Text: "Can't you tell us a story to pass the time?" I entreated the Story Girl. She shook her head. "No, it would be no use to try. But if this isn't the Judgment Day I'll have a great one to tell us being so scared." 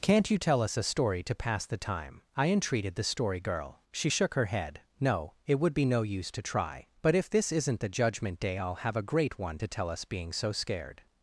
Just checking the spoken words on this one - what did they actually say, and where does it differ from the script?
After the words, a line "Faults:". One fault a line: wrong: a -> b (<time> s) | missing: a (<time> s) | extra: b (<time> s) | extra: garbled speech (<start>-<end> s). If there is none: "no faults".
"Can't you tell us a story to pass the time?" I entreated the Story Girl. She shook her head. "No, it would be no use to try. But if this isn't the Judgment Day I'll have a great one to tell us being so scared."
Faults:
no faults